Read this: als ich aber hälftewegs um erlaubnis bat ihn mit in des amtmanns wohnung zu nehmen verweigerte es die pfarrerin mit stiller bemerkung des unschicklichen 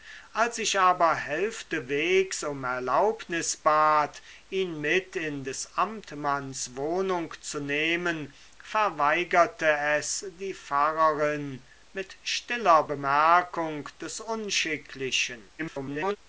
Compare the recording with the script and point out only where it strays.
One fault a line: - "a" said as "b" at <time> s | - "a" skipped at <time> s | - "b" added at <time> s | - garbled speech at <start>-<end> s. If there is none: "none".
- garbled speech at 15.6-16.2 s